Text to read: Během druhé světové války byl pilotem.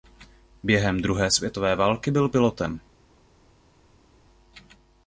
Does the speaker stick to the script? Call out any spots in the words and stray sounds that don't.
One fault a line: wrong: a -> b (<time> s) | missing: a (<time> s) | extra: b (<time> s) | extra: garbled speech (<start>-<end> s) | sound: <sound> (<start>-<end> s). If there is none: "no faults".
no faults